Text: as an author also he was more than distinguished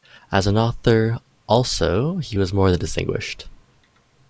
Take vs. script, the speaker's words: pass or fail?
pass